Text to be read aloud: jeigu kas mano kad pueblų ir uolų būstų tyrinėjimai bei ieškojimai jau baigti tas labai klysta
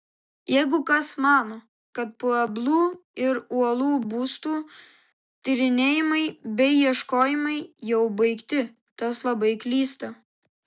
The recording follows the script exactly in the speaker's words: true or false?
true